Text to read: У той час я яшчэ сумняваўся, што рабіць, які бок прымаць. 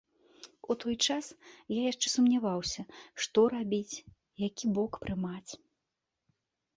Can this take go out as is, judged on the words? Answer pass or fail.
pass